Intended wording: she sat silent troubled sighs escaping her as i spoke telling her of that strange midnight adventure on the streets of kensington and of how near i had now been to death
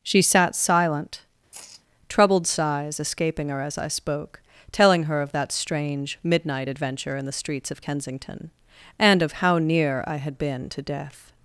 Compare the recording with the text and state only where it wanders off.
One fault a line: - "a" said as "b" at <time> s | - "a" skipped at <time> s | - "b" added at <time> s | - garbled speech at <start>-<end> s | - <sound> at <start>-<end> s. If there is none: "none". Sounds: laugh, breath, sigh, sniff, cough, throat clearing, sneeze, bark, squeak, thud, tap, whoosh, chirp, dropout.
- sigh at 1.5-1.8 s
- "on" said as "in" at 7.2 s
- "now" skipped at 10.4 s